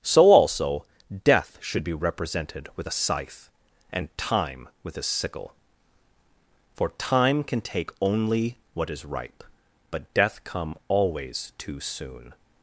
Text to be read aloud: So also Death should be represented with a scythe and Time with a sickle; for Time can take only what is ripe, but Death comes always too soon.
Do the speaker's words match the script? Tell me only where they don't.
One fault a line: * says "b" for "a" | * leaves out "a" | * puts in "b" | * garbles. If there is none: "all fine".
* says "come" for "comes"